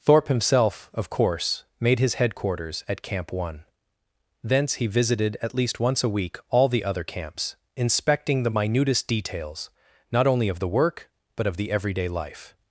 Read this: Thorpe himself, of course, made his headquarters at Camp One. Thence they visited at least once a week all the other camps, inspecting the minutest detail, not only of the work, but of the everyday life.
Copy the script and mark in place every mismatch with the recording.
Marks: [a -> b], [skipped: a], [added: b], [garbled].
Thorpe himself, of course, made his headquarters at Camp One. Thence [they -> he] visited at least once a week all the other camps, inspecting the minutest [detail, -> details] not only of the work, but of the everyday life.